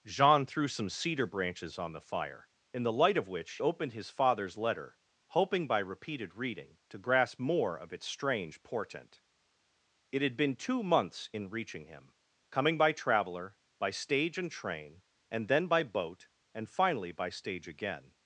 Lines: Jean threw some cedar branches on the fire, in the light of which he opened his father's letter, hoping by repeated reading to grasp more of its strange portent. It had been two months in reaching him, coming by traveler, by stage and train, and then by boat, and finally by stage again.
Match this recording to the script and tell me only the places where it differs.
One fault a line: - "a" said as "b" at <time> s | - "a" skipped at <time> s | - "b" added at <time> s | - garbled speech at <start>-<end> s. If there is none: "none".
- "he" skipped at 3.6 s